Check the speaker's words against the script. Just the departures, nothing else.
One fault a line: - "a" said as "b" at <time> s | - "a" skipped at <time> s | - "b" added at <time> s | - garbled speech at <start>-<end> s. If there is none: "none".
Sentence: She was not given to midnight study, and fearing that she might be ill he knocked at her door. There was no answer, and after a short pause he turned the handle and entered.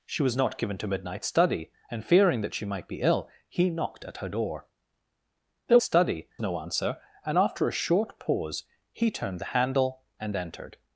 - "was" said as "study" at 5.8 s